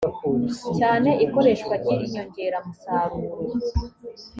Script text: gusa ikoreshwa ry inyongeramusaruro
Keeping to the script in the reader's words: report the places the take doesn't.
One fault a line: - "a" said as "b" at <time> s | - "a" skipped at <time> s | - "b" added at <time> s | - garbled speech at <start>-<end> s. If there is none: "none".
- "gusa" said as "cyane" at 0.8 s